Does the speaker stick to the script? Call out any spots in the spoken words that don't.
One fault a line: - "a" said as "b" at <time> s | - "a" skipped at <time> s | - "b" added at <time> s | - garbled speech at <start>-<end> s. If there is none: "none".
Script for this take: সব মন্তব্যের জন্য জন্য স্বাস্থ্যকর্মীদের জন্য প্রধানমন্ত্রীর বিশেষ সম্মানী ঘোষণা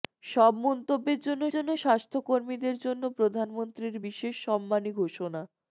none